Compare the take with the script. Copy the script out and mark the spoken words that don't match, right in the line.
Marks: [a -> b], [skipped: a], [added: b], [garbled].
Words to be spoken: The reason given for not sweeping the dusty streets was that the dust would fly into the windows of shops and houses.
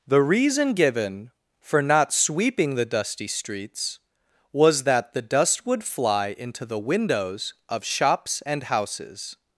The reason given for not sweeping the dusty streets was that the dust would fly into the windows of shops and houses.